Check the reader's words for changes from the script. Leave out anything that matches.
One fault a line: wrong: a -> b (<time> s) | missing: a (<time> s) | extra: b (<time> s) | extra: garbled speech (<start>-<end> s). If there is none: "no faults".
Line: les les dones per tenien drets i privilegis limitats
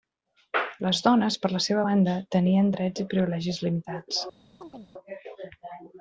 missing: les (1.0 s)
extra: la seva banda (1.5 s)